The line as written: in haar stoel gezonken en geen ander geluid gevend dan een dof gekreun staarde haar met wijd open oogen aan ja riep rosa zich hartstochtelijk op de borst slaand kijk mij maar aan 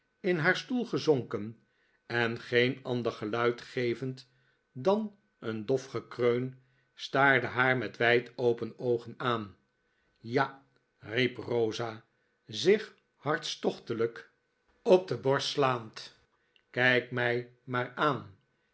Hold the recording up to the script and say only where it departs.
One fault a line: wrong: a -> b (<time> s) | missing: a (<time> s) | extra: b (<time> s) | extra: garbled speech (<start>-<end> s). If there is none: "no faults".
no faults